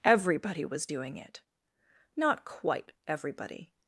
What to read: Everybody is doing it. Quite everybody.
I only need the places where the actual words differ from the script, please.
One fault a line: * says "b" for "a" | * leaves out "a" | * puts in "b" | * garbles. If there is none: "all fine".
* says "was" for "is"
* puts in "Not"